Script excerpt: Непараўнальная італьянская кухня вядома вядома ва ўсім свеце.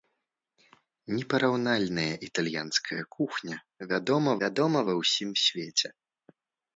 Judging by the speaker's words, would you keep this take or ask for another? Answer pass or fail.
pass